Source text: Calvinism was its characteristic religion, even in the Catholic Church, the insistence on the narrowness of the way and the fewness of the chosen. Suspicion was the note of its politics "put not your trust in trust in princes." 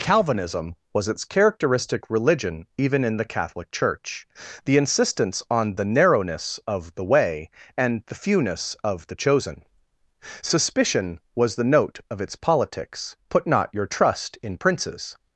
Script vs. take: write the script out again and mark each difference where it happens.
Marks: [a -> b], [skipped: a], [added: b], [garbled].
Calvinism was its characteristic religion, even in the Catholic Church, the insistence on the narrowness of the way and the fewness of the chosen. Suspicion was the note of its politics "put not your trust in [skipped: trust in] princes."